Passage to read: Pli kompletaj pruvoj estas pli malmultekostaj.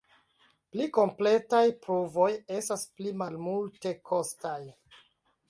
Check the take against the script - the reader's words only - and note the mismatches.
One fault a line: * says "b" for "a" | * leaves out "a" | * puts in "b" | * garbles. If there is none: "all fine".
all fine